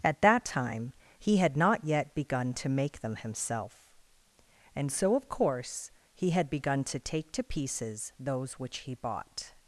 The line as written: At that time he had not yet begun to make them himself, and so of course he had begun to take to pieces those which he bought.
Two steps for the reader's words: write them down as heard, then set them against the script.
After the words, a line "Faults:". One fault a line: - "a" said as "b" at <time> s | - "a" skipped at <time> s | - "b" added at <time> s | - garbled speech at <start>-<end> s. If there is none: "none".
At that time he had not yet begun to make them himself, and so of course he had begun to take to pieces those which he bought.
Faults:
none